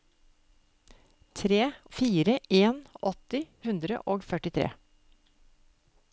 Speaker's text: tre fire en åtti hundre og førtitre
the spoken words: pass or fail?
pass